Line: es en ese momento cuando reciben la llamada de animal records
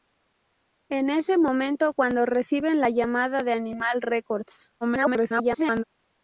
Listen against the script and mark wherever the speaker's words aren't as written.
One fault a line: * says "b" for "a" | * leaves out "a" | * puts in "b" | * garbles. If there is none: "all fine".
* garbles